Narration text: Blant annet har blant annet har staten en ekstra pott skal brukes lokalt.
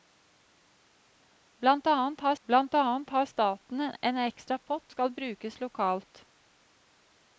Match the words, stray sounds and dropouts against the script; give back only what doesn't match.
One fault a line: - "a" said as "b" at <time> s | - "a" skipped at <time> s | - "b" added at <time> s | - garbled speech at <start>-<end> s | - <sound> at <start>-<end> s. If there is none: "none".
none